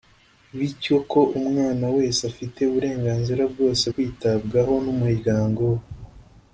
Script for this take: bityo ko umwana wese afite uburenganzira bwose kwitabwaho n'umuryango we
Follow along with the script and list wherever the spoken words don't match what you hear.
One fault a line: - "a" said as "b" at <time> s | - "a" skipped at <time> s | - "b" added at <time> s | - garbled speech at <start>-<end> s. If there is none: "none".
none